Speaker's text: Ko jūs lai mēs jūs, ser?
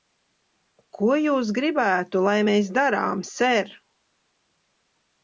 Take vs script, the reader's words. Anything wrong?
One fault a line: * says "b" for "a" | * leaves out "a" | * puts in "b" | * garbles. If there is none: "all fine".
* puts in "gribētu"
* says "darām" for "jūs"